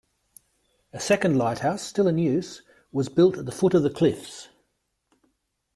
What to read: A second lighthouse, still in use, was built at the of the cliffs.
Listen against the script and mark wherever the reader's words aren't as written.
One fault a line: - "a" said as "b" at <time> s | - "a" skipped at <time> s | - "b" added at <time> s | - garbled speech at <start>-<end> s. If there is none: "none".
- "foot" added at 3.5 s